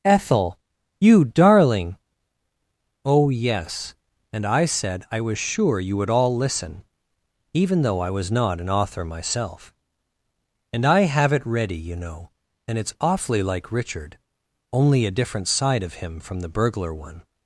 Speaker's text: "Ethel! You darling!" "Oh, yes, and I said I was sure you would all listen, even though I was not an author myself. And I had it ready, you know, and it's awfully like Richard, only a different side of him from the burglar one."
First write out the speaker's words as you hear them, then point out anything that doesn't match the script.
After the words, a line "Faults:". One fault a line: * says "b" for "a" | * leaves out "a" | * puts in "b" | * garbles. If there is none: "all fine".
"Ethel! You darling!" "Oh, yes, and I said I was sure you would all listen, even though I was not an author myself. And I have it ready, you know, and it's awfully like Richard, only a different side of him from the burglar one."
Faults:
* says "have" for "had"